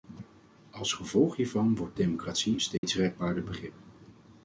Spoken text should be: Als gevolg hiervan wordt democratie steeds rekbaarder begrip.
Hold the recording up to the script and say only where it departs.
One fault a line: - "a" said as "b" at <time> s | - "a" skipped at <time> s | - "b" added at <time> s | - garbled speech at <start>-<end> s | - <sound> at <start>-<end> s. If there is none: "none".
- dropout at 2.8-2.8 s